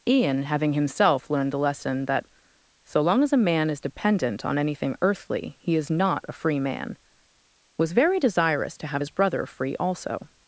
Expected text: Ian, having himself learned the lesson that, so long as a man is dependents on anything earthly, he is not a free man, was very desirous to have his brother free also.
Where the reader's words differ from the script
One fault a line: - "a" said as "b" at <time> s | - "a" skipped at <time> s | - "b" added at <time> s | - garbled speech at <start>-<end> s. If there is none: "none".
- "dependents" said as "dependent" at 3.8 s